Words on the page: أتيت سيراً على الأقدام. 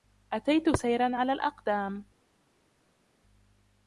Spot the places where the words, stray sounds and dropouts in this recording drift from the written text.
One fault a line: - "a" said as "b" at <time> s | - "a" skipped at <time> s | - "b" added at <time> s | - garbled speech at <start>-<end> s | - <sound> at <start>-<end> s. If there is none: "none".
none